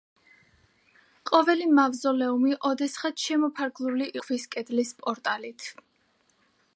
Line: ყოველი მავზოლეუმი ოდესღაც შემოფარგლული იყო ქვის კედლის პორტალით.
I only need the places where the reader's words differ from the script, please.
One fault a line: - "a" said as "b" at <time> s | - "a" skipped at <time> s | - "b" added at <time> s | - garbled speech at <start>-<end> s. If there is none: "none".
- "იყო" skipped at 4.1 s